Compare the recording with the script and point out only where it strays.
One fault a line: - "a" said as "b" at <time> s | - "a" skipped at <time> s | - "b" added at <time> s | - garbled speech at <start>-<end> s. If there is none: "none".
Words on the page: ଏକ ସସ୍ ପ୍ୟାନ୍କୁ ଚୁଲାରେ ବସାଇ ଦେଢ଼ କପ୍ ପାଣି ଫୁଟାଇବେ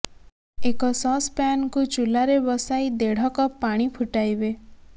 none